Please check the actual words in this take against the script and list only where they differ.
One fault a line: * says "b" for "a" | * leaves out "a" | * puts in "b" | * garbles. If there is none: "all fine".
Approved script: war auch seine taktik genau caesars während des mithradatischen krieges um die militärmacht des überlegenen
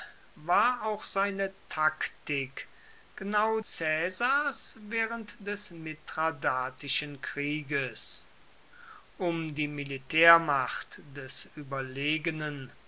all fine